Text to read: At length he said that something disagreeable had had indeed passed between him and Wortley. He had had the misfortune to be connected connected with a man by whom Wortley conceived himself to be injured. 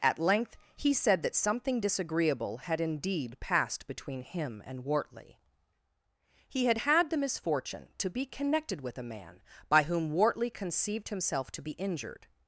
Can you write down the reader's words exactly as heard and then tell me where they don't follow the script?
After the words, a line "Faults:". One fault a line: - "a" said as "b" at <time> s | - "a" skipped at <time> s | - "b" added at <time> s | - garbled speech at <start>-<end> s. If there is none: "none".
At length he said that something disagreeable had indeed passed between him and Wortley. He had had the misfortune to be connected with a man by whom Wortley conceived himself to be injured.
Faults:
- "had" skipped at 2.8 s
- "connected" skipped at 8.8 s